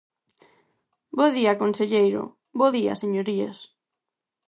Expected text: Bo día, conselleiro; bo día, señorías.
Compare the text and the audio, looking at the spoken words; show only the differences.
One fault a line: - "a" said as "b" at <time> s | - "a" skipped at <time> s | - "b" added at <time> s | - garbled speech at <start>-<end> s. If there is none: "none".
none